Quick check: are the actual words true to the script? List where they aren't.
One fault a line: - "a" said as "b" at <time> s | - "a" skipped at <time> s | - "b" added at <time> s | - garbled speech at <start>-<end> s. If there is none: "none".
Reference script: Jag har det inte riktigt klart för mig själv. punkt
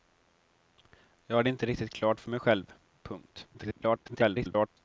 - garbled speech at 3.5-4.7 s